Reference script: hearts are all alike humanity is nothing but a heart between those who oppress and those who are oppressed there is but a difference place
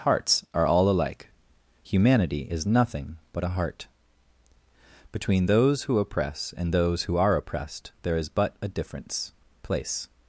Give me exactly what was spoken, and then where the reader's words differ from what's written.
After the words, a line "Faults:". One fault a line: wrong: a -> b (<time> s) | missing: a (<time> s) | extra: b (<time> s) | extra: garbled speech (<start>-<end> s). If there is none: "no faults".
hearts are all alike humanity is nothing but a heart between those who oppress and those who are oppressed there is but a difference place
Faults:
no faults